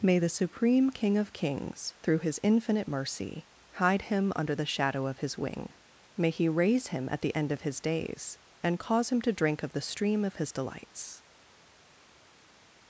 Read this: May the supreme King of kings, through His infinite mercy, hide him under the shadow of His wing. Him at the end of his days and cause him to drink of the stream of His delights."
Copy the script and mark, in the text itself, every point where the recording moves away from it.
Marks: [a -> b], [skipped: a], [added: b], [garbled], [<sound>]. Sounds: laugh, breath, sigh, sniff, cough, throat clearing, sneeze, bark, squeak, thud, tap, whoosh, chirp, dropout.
May the supreme King of kings, through His infinite mercy, hide him under the shadow of His wing. [added: May He raise] Him at the end of his days and cause him to drink of the stream of His delights."